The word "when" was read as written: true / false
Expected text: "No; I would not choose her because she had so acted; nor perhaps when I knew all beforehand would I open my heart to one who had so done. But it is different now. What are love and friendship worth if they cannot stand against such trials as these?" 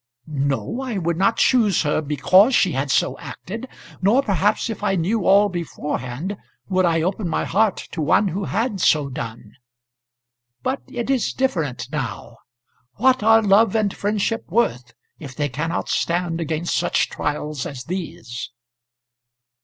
false